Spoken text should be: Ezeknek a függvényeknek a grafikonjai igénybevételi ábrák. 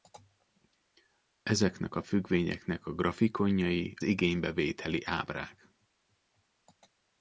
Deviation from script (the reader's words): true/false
false